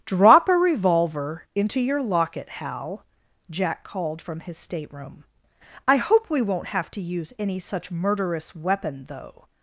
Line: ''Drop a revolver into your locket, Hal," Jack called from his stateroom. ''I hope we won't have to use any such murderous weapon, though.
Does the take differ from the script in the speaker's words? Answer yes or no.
no